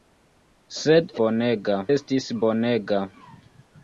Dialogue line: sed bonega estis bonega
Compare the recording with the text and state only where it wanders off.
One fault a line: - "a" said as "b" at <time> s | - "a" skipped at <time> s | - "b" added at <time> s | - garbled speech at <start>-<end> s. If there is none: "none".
none